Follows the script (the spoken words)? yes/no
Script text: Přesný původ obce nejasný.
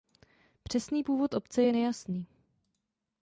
no